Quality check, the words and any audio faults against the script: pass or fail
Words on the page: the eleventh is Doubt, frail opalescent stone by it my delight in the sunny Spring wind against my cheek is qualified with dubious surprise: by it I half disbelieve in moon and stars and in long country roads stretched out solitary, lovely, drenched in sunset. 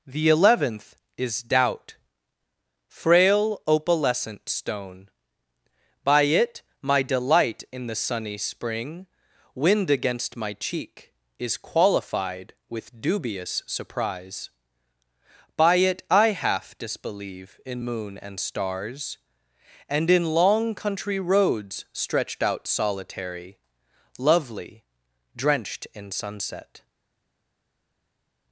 pass